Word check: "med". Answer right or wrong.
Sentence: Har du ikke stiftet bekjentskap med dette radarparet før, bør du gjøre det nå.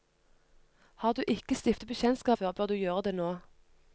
wrong